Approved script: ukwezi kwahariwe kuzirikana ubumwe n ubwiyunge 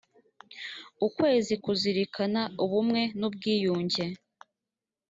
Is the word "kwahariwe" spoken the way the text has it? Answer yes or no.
no